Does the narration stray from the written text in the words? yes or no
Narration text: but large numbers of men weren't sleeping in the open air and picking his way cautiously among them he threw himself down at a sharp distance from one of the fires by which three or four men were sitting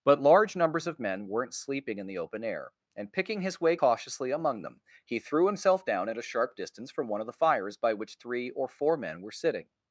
no